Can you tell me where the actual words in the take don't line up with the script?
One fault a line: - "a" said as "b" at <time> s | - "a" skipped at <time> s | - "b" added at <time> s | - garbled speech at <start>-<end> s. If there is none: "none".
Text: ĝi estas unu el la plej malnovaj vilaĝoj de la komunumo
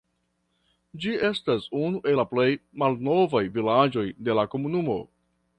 none